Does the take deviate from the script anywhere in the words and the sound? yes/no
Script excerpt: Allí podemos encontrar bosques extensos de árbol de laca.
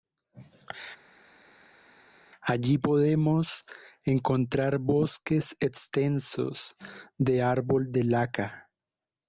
no